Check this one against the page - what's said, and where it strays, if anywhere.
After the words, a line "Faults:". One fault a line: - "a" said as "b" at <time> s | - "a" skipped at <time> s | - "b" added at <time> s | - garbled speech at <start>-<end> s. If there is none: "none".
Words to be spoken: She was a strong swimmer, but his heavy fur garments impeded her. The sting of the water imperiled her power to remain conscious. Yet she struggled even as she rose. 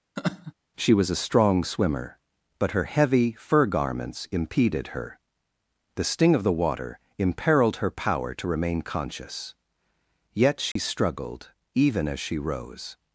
She was a strong swimmer, but her heavy fur garments impeded her. The sting of the water imperiled her power to remain conscious. Yet she struggled even as she rose.
Faults:
- "his" said as "her" at 2.7 s